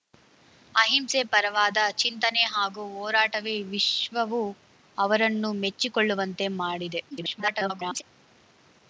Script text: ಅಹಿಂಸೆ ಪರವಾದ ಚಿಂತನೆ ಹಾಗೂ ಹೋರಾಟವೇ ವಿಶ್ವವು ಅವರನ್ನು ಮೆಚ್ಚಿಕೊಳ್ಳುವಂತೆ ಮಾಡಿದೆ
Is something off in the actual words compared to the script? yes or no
yes